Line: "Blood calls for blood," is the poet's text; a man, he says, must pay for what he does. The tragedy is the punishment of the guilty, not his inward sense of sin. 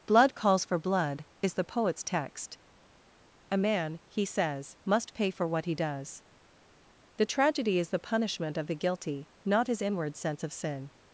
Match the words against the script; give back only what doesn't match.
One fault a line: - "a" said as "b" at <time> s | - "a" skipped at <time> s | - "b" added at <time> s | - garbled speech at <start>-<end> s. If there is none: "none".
none